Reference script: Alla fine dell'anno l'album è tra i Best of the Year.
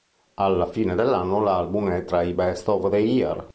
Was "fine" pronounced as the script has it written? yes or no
yes